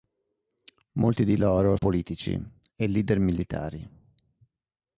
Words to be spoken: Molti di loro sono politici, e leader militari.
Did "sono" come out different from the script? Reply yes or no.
yes